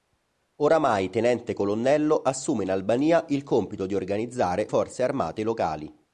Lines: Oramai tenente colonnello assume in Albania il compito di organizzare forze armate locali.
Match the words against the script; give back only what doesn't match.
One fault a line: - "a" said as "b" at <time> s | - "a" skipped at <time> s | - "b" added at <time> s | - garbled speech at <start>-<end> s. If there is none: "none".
none